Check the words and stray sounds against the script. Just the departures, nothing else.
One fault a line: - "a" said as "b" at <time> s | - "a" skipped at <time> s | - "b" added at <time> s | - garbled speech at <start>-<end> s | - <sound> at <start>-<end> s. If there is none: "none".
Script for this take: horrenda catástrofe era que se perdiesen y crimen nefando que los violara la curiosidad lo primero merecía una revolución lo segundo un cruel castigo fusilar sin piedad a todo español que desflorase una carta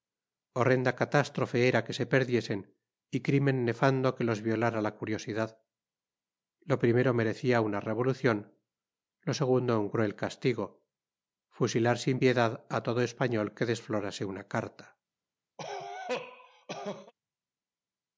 - cough at 15.6-17.1 s